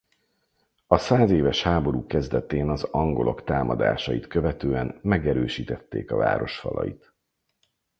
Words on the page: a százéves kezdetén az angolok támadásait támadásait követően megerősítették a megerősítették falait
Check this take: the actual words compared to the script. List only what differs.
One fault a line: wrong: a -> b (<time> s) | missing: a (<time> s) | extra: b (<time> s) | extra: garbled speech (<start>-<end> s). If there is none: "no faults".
extra: háború (1.6 s)
missing: támadásait (4.3 s)
wrong: megerősítették -> város (6.2 s)